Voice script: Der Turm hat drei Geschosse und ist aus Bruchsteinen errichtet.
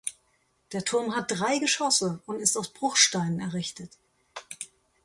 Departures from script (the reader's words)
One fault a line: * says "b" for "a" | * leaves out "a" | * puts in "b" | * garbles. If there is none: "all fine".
all fine